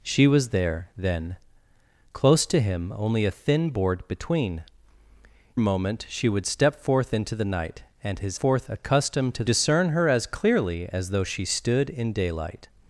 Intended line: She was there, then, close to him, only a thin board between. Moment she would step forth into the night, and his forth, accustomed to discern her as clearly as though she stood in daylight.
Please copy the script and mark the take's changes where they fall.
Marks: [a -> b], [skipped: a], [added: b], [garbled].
She was there, then, close to him, only a thin board between. Moment she would step forth into the night, and his forth, accustomed to discern her as clearly as though she stood in daylight.